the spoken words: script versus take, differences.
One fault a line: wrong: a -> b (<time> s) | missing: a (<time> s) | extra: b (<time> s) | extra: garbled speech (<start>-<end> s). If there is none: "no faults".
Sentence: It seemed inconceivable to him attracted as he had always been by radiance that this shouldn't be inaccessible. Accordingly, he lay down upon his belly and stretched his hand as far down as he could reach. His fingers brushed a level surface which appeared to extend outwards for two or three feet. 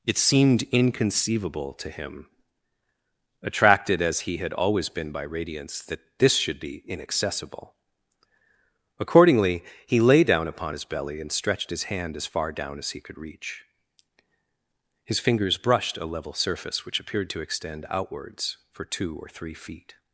wrong: shouldn't -> should (6.3 s)